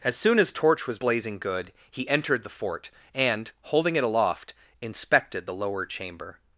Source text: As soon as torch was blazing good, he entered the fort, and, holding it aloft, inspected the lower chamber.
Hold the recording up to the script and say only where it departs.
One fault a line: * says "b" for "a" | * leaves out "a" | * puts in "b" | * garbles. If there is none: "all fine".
all fine